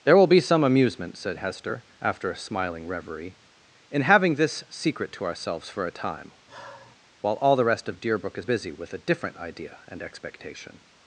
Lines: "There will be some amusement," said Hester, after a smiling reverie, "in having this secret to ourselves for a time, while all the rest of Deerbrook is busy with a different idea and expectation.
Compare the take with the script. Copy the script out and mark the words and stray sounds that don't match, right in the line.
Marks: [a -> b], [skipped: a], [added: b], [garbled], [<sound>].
"There will be some amusement," said Hester, after a smiling reverie, "in having this secret to ourselves for a time, [sigh] while all the rest of Deerbrook is busy with a different idea and expectation.